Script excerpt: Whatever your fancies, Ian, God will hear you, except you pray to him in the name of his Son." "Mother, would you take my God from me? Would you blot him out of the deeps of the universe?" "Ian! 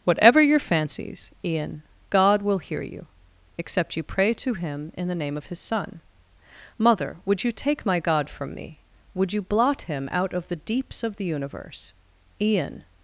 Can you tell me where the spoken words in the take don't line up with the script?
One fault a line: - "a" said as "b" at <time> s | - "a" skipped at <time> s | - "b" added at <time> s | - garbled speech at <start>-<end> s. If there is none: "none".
none